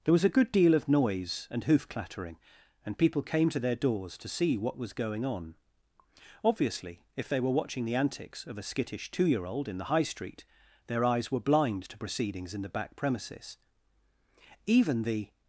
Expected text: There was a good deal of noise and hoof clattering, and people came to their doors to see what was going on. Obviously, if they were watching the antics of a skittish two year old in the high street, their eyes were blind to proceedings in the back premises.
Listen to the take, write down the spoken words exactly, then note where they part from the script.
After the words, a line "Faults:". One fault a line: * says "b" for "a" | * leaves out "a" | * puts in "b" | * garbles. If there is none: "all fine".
There was a good deal of noise and hoof clattering, and people came to their doors to see what was going on. Obviously, if they were watching the antics of a skittish two year old in the high street, their eyes were blind to proceedings in the back premises. Even the
Faults:
* puts in "Even the"